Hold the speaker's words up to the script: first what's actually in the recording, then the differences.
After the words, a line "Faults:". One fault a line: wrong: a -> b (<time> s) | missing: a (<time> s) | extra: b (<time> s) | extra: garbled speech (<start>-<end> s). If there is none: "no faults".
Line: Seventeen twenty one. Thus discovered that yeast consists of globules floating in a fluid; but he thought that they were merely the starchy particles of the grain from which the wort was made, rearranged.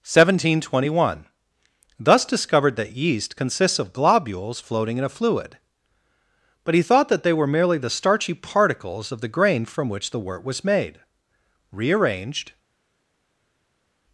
Seventeen twenty one. Thus discovered that yeast consists of globules floating in a fluid; but he thought that they were merely the starchy particles of the grain from which the wort was made, rearranged.
Faults:
no faults